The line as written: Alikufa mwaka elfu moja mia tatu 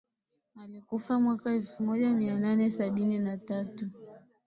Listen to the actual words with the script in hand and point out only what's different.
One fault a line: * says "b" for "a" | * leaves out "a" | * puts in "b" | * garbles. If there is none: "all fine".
* puts in "nane sabini na"